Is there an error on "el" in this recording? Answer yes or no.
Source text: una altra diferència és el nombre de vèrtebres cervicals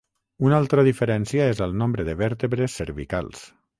no